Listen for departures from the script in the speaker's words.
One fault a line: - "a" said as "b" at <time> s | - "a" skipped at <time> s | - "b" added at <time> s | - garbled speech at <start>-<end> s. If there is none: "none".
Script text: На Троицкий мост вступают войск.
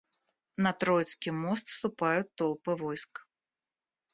- "толпы" added at 2.4 s